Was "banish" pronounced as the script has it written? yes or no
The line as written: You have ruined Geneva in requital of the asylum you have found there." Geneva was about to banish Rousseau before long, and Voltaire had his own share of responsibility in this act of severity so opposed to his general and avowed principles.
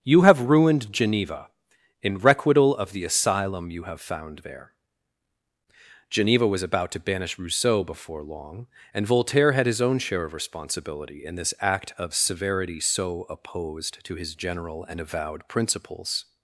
yes